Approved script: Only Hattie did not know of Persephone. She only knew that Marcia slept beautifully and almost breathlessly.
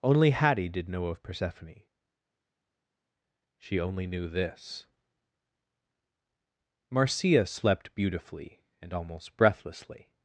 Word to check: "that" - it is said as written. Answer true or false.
false